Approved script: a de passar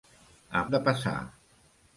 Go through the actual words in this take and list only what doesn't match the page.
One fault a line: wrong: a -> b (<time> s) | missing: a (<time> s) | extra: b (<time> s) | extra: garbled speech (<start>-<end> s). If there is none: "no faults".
no faults